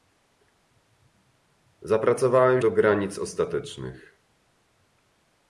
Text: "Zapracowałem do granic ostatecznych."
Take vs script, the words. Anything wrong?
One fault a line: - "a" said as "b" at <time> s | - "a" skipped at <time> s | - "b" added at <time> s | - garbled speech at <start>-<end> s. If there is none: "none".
none